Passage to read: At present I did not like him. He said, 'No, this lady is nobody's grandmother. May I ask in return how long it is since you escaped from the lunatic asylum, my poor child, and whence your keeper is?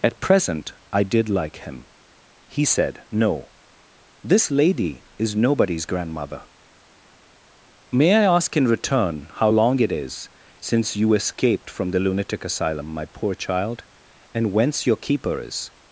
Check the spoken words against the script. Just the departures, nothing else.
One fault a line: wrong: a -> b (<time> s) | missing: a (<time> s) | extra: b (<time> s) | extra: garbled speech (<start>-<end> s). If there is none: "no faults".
missing: not (1.3 s)